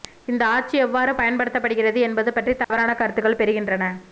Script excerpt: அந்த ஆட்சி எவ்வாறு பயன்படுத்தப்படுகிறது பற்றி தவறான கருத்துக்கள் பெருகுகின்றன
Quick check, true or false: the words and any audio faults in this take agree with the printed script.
false